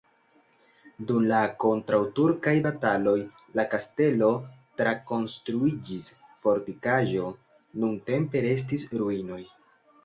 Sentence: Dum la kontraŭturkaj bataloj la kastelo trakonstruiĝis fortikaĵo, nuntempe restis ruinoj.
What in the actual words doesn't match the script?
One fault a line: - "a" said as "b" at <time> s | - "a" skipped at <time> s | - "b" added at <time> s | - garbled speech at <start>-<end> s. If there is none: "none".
none